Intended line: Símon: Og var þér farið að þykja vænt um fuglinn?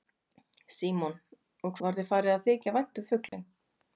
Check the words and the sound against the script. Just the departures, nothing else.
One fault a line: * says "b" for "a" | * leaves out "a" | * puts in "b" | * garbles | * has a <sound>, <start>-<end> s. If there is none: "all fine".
* has a dropout, 3.3-3.3 s